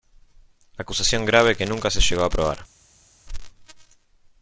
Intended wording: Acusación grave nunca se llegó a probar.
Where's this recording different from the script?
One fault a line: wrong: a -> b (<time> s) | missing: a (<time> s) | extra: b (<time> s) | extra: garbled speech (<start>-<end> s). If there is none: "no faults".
extra: que (1.5 s)